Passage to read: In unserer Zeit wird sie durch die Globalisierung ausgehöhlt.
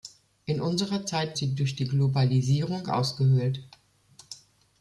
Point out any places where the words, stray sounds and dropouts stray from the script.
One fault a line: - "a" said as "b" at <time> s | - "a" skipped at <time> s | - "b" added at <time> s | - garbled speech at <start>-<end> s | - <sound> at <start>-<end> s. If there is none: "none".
- "wird" skipped at 1.4 s